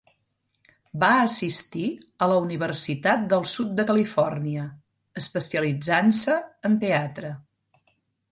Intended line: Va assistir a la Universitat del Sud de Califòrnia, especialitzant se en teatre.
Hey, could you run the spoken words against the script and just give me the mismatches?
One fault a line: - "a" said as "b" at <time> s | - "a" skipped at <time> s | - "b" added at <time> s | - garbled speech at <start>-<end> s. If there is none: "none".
none